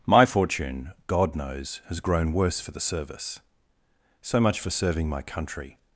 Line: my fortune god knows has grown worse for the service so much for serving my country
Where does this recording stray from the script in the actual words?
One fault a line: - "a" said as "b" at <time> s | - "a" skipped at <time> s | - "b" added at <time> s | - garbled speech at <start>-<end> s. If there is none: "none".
none